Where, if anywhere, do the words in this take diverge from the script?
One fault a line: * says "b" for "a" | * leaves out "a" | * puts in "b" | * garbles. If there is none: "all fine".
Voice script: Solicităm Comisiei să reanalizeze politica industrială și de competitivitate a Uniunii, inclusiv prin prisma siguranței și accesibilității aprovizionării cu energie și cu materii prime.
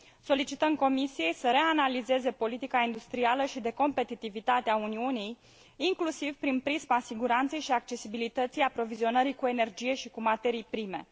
all fine